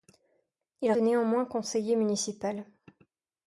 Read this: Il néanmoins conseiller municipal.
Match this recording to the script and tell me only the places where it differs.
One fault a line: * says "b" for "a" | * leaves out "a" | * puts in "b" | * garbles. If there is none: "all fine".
all fine